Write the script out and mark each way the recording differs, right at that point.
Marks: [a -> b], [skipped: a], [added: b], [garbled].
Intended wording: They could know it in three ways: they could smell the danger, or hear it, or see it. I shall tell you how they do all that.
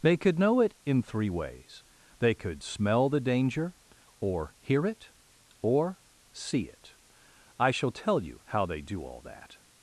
They could know it in three ways: they could smell the danger, or hear it, or see it. I shall tell you how they do all that.